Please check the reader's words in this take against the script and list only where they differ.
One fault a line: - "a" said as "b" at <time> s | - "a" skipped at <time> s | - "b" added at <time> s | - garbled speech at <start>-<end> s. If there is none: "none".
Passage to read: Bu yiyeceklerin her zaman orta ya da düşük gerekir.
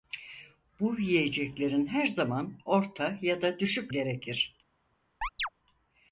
none